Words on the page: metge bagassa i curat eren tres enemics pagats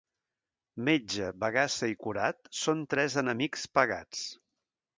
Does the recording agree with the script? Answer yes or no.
no